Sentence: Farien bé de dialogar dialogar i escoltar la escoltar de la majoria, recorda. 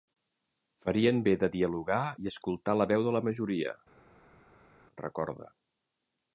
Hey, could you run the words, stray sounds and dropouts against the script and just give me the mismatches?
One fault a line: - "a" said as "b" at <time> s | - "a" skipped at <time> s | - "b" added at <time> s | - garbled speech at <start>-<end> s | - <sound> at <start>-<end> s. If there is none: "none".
- "dialogar" skipped at 2.0 s
- "escoltar" said as "veu" at 2.9 s